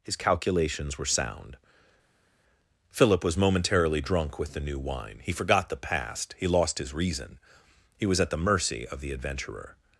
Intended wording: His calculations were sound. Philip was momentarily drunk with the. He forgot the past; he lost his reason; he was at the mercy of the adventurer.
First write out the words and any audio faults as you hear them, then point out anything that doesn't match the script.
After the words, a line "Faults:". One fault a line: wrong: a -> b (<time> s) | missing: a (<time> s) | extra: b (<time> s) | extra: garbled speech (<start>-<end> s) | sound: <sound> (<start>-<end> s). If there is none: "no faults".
His calculations were sound. Philip was momentarily drunk with the new wine. He forgot the past; he lost his reason; he was at the mercy of the adventurer.
Faults:
extra: new wine (4.6 s)